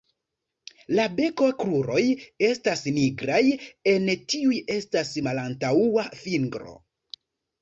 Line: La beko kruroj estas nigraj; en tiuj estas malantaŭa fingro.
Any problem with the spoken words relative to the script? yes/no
no